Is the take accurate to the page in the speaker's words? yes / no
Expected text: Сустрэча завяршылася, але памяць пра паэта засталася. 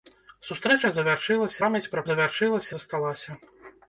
no